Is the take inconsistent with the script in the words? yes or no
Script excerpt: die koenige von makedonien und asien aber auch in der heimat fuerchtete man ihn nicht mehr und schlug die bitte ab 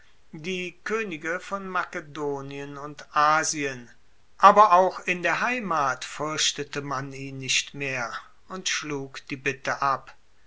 no